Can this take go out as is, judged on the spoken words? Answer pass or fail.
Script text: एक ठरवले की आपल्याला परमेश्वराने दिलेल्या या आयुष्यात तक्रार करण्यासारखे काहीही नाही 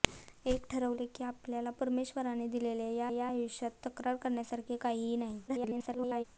fail